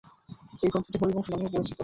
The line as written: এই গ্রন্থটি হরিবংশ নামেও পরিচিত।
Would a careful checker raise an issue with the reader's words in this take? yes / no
no